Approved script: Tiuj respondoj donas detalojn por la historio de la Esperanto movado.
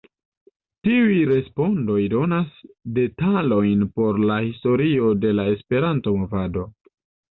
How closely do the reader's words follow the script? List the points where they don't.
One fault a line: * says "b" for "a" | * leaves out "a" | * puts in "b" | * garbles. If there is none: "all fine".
all fine